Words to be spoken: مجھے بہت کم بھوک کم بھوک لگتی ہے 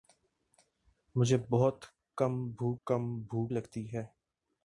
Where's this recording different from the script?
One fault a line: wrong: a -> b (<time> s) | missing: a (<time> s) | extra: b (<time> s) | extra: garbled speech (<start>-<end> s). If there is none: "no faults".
no faults